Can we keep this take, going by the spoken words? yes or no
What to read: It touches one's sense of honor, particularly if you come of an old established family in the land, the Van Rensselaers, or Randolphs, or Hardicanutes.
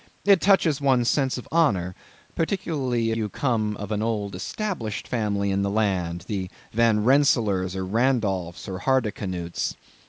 no